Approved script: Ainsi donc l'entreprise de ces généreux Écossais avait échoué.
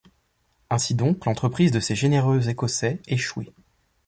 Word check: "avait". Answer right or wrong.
wrong